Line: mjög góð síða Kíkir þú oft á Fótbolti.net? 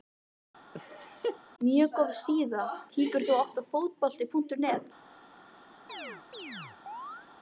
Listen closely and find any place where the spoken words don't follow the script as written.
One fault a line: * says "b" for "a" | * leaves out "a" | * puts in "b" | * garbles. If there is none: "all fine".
all fine